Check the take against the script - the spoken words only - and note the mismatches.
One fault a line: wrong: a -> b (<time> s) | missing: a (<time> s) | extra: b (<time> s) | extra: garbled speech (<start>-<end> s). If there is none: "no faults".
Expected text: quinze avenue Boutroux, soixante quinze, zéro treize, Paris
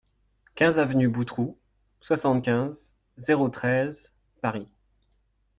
no faults